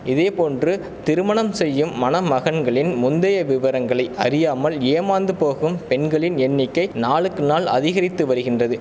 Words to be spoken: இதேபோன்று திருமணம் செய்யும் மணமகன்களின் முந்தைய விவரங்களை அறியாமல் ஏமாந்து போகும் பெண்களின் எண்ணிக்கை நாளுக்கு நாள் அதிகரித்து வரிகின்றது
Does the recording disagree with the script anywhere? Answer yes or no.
no